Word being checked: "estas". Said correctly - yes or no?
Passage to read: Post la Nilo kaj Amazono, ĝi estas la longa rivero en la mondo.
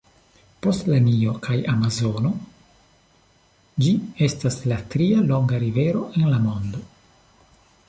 yes